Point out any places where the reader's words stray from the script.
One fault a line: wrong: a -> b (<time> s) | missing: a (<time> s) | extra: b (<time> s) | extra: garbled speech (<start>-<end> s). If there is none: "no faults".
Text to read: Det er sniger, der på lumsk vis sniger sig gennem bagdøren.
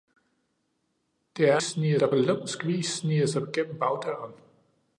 no faults